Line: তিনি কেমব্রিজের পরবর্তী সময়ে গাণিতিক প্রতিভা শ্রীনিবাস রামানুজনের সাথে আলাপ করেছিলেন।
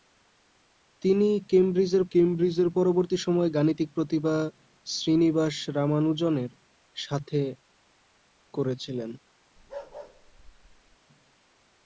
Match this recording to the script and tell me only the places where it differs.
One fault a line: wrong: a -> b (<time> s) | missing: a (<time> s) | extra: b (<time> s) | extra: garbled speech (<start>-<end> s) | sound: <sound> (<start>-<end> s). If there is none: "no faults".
extra: কেমব্রিজের (2.1 s)
missing: আলাপ (7.4 s)
sound: bark (9.6-11.0 s)